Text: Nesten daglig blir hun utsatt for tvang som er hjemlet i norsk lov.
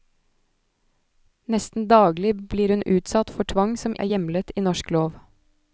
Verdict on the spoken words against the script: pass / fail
pass